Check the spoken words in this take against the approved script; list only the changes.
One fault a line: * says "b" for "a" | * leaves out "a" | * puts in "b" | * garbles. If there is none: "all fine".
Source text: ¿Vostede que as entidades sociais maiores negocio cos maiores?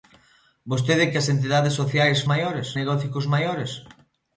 all fine